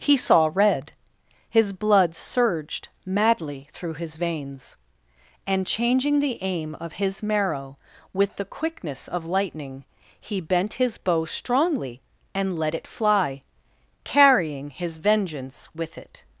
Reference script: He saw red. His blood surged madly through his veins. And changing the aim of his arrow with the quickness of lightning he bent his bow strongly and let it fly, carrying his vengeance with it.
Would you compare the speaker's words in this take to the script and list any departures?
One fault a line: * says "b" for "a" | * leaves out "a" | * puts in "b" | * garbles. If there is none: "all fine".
* says "marrow" for "arrow"